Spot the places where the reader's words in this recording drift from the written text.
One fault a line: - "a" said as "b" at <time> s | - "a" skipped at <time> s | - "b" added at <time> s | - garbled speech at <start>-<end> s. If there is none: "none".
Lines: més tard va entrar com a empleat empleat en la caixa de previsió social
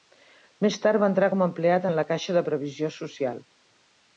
- "empleat" skipped at 1.9 s